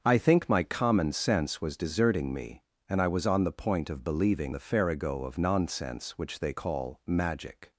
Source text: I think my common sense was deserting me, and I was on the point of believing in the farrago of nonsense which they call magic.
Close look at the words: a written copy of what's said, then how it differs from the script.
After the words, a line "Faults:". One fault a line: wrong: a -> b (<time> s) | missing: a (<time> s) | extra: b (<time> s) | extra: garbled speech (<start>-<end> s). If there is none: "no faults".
I think my common sense was deserting me, and I was on the point of believing the farrago of nonsense which they call magic.
Faults:
missing: in (4.5 s)